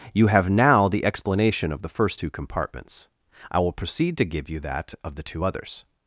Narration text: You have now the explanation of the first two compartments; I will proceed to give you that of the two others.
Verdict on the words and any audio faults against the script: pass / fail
pass